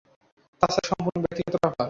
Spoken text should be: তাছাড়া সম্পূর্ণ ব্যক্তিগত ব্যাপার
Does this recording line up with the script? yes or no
yes